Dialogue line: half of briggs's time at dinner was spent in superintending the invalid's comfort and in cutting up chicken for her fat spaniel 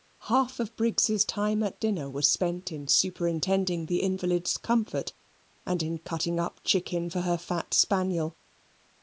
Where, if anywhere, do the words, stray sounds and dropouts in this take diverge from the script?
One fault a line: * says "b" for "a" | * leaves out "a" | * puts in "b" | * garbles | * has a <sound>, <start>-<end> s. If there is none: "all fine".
all fine